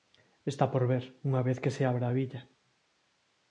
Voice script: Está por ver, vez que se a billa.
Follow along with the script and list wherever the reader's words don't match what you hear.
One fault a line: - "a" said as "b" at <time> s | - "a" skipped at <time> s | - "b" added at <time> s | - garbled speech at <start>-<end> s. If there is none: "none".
- "unha" added at 1.3 s
- "abra" added at 1.9 s